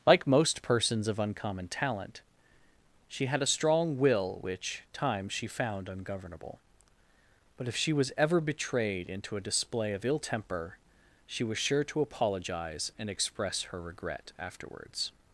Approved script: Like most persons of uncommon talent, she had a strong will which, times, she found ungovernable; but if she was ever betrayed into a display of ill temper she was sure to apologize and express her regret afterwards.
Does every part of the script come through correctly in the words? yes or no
yes